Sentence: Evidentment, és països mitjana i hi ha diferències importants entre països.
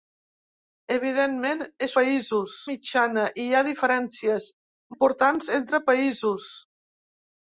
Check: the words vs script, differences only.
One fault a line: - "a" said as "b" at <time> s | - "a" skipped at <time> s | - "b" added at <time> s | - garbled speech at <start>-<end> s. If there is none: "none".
none